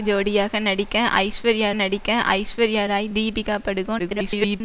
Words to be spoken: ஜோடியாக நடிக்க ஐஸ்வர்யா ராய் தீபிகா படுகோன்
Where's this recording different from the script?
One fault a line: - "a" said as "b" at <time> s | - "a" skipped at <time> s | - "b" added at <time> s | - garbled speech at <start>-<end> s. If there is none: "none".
- "நடிக்க ஐஸ்வர்யா" added at 1.7 s
- garbled speech at 4.0-4.6 s